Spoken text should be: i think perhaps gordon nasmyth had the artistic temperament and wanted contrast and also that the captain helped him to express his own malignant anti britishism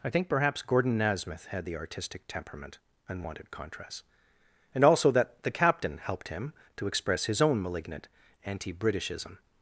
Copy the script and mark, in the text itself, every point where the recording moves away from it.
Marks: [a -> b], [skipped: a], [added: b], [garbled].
i think perhaps gordon nasmyth had the artistic temperament and wanted contrast and also that the captain helped him to express his own malignant anti britishism